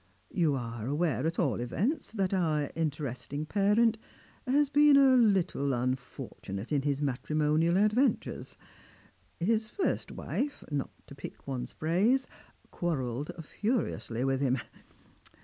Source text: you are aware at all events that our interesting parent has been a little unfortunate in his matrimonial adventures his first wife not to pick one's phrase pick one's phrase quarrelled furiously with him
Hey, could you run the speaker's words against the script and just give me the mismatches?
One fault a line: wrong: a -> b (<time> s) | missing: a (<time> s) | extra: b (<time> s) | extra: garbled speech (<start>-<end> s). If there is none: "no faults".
missing: pick one's phrase (12.2 s)